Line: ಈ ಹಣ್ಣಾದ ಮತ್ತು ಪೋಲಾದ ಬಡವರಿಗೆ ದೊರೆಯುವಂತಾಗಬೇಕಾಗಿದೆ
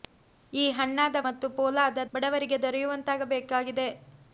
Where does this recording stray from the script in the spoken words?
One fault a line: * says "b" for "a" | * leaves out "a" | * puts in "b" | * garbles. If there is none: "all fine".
all fine